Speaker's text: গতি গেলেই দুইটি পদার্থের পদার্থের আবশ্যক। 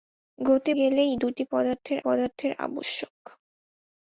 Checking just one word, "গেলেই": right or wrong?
right